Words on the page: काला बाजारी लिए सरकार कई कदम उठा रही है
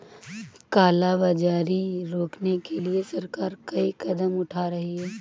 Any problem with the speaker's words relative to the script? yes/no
yes